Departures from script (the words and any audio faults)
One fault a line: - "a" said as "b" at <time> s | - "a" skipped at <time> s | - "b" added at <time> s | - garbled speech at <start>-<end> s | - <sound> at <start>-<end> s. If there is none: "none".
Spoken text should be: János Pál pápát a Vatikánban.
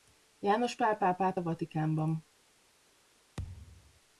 - thud at 3.4-4.0 s